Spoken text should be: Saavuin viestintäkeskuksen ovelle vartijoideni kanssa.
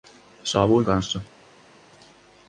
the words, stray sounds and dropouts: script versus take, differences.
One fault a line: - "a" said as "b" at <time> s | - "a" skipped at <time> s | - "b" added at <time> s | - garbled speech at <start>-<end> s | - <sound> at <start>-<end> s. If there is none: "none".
- "viestintäkeskuksen ovelle vartijoideni" skipped at 0.8 s